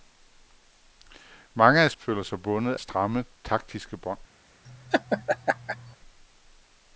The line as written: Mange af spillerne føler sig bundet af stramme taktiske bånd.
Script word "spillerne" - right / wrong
wrong